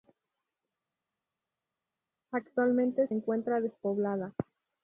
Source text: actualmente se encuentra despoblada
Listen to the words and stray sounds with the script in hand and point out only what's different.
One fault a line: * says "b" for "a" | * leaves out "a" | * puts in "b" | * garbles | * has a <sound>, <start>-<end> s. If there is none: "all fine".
* leaves out "se"